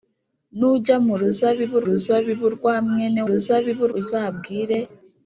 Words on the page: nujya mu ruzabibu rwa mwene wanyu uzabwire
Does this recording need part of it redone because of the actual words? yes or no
yes